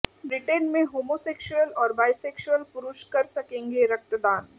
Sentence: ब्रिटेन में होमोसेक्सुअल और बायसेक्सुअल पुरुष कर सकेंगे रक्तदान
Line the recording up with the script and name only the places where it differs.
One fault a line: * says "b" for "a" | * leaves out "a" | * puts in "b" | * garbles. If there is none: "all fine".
all fine